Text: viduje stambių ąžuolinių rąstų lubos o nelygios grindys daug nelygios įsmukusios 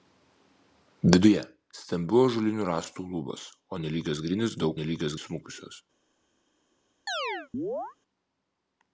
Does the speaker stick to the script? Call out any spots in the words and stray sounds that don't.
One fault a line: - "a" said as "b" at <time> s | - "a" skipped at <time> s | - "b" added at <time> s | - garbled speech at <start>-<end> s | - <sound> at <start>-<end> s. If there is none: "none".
- chirp at 7.1-8.0 s